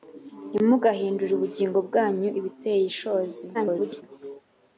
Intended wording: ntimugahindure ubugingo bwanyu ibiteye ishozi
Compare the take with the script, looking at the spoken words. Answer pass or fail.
fail